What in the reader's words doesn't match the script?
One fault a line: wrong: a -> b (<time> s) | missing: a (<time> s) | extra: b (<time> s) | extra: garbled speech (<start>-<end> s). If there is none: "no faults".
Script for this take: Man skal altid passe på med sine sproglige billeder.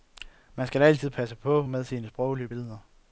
no faults